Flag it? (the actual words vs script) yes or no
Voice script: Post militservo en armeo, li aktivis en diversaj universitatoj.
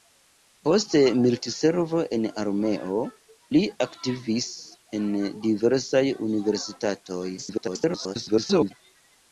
yes